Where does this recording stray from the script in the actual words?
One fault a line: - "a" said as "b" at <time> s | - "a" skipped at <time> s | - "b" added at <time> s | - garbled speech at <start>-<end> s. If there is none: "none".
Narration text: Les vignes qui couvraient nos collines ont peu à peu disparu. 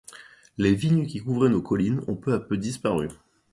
none